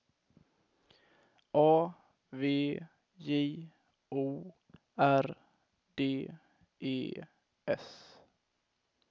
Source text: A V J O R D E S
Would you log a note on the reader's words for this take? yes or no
no